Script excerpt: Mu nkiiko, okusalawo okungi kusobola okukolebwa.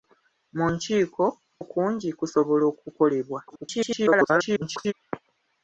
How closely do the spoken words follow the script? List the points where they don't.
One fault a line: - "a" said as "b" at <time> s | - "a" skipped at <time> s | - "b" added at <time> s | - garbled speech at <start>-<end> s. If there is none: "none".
- "okusalawo" skipped at 1.2 s
- garbled speech at 3.5-4.9 s